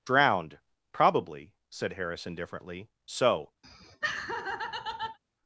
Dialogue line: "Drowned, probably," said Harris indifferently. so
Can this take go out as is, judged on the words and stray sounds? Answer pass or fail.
fail